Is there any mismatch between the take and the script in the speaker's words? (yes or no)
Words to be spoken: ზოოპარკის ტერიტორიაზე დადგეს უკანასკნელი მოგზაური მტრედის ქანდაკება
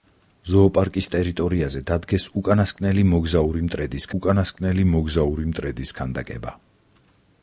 yes